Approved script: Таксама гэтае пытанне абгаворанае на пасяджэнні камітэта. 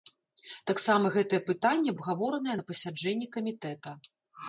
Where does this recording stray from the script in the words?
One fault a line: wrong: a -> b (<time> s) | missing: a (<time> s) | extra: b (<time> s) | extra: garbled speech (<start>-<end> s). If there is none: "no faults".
no faults